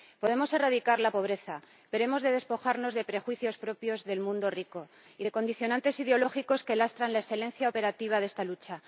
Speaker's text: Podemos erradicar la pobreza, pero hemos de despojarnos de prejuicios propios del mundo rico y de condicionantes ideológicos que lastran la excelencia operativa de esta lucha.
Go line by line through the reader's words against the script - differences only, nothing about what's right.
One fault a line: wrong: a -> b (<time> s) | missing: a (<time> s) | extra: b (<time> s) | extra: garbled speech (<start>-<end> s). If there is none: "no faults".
no faults